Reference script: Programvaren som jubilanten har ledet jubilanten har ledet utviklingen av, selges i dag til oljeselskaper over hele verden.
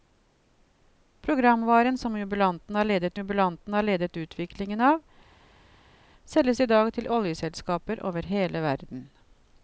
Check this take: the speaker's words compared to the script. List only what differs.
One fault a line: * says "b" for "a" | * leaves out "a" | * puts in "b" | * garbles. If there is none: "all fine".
all fine